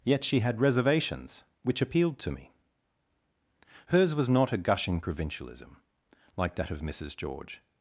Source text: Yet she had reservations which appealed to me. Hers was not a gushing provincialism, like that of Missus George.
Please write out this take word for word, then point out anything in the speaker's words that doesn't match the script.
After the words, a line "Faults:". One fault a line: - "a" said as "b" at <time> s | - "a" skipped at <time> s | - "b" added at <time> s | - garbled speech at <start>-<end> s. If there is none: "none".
Yet she had reservations which appealed to me. Hers was not a gushing provincialism, like that of Missus George.
Faults:
none